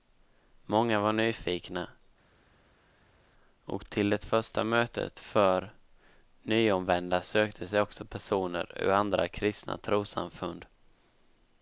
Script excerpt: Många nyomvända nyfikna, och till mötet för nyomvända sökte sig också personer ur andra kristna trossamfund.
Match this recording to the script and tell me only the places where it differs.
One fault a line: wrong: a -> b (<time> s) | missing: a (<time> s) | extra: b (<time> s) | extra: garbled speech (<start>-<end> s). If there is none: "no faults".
wrong: nyomvända -> var (1.0 s)
extra: det första (4.1 s)